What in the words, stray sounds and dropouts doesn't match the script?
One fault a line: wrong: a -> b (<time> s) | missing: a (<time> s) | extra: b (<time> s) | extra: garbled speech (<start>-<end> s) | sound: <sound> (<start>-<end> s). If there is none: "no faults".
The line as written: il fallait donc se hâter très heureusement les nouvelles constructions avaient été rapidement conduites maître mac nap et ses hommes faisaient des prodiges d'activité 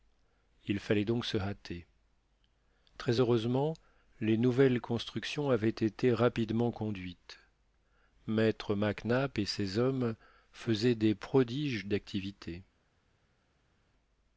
no faults